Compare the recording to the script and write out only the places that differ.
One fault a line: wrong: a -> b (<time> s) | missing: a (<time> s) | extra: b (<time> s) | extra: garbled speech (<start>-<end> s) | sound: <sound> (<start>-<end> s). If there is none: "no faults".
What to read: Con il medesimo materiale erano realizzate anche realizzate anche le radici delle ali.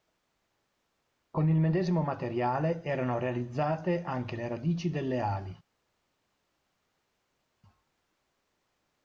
missing: realizzate anche (4.3 s)